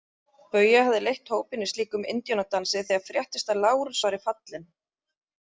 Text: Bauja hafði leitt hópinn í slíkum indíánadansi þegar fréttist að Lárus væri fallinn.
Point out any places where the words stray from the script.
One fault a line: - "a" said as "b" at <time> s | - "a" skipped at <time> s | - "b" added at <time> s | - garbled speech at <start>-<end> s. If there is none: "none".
none